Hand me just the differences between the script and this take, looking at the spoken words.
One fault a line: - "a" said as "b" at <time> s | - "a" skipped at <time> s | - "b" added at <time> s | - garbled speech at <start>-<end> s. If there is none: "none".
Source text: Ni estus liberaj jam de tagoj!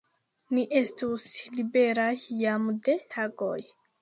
none